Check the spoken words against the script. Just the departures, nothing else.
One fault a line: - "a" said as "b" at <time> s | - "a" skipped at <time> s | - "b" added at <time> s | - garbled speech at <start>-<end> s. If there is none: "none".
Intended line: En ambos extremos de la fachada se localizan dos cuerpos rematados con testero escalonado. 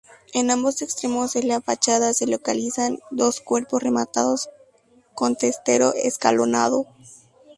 none